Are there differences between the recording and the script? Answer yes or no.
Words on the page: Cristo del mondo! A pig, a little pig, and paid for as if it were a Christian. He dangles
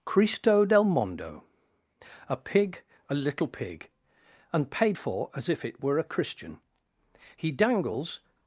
no